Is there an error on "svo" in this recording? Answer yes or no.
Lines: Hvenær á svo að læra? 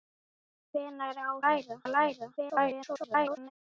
yes